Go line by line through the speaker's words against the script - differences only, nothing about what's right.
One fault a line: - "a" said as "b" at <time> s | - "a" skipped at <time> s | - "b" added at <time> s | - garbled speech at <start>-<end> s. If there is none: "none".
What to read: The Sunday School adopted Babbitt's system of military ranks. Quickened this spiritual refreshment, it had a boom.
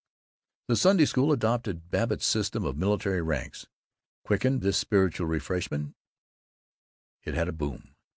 none